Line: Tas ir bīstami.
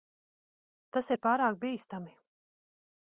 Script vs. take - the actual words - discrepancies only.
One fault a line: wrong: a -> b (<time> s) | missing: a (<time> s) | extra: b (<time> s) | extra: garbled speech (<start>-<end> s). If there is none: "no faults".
extra: pārāk (1.3 s)